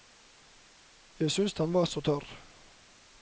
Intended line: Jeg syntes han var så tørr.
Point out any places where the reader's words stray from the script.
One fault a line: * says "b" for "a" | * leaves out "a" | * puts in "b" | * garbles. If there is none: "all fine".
all fine